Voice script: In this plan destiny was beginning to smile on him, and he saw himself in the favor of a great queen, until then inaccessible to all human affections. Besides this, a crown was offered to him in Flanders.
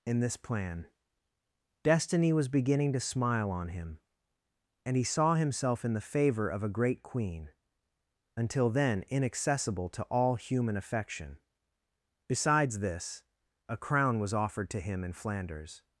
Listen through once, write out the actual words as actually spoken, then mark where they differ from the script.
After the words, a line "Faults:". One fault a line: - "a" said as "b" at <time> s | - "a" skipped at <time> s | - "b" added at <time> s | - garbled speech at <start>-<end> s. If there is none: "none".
In this plan destiny was beginning to smile on him, and he saw himself in the favor of a great queen, until then inaccessible to all human affection. Besides this, a crown was offered to him in Flanders.
Faults:
- "affections" said as "affection" at 10.8 s